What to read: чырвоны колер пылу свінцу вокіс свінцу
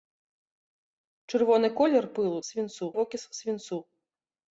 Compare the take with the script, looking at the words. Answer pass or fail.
pass